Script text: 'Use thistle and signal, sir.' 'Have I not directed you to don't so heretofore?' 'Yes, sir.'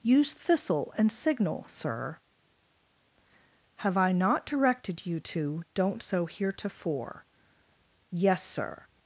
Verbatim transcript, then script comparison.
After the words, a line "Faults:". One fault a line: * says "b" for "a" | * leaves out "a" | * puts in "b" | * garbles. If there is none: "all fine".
'Use thistle and signal, sir.' 'Have I not directed you to don't so heretofore?' 'Yes, sir.'
Faults:
all fine